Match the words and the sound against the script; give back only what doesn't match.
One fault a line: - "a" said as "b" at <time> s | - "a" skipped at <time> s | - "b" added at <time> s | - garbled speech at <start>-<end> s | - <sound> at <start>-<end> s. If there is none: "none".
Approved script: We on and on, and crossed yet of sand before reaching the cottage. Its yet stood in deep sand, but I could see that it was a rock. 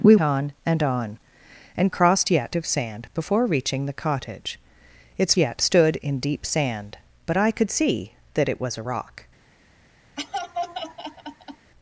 - laugh at 10.2-11.7 s